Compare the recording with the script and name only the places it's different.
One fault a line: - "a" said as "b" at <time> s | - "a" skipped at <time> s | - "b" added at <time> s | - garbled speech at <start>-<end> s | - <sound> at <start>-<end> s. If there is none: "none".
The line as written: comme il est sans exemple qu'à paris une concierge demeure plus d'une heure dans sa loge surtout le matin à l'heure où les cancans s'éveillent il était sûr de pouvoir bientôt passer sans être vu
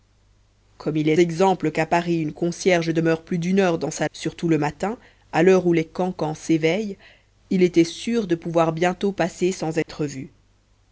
- "sans" skipped at 1.1 s
- "loge" skipped at 4.1 s
- dropout at 9.8-9.9 s